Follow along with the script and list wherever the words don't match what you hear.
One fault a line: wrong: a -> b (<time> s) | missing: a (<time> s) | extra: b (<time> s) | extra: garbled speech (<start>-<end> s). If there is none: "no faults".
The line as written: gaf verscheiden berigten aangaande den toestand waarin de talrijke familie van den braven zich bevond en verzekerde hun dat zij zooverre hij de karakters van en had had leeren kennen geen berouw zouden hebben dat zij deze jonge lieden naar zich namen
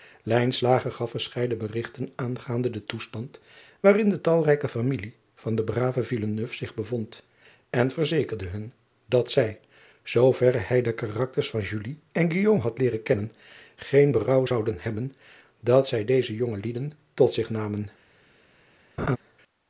missing: had (12.8 s)
wrong: naar -> tot (17.1 s)